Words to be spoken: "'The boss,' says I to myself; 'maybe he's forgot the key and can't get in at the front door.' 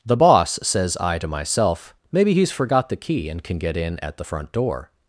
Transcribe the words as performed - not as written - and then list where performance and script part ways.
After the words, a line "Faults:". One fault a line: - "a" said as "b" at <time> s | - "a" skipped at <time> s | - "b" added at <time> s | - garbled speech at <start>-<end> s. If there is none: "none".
"'The boss,' says I to myself; 'maybe he's forgot the key and can get in at the front door.'
Faults:
- "can't" said as "can" at 3.4 s